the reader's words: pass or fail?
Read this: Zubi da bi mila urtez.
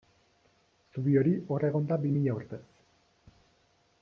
fail